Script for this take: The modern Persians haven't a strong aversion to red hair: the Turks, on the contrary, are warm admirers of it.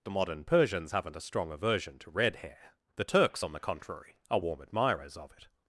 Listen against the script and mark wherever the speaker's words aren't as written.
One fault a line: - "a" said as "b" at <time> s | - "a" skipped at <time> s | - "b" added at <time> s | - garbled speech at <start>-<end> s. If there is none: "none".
none